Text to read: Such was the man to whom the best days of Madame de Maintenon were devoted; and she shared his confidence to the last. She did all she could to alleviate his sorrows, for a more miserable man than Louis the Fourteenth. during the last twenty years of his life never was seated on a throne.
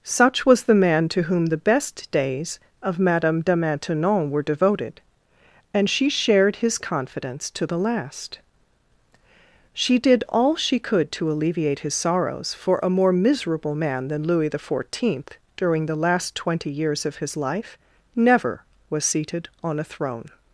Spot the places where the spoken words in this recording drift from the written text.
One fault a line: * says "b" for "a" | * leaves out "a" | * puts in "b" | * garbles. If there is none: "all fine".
all fine